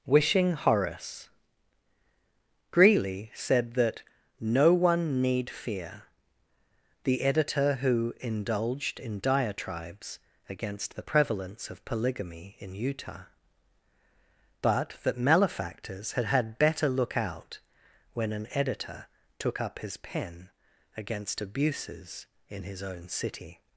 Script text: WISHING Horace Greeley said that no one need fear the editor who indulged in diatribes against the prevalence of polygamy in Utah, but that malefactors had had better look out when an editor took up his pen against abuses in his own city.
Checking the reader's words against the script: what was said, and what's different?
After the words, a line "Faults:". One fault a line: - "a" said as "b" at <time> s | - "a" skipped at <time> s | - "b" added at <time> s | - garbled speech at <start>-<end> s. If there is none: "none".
WISHING Horace Greeley said that no one need fear the editor who indulged in diatribes against the prevalence of polygamy in Utah, but that malefactors had had better look out when an editor took up his pen against abuses in his own city.
Faults:
none